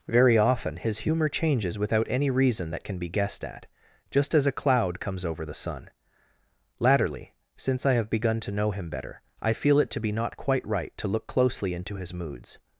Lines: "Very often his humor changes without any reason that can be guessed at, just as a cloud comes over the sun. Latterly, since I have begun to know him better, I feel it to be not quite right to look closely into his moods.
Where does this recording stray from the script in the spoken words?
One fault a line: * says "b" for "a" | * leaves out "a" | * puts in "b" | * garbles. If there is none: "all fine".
all fine